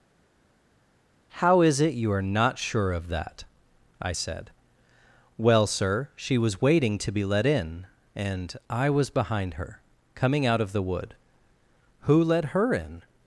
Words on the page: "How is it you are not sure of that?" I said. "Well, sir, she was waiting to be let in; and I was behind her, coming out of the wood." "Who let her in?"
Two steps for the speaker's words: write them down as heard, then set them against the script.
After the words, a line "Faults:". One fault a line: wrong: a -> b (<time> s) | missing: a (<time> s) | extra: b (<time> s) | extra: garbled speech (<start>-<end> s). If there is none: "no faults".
"How is it you are not sure of that?" I said. "Well, sir, she was waiting to be let in; and I was behind her, coming out of the wood." "Who let her in?"
Faults:
no faults